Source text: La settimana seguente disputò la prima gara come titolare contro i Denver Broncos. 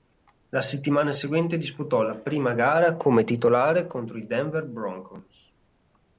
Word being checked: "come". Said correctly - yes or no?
yes